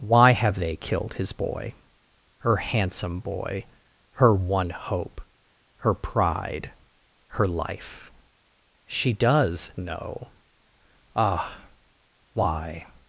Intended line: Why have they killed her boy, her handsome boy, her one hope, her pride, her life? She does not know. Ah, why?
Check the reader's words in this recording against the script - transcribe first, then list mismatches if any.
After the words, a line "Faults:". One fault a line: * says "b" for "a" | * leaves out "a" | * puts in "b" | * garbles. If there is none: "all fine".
Why have they killed his boy, her handsome boy, her one hope, her pride, her life? She does know. Ah, why?
Faults:
* says "his" for "her"
* leaves out "not"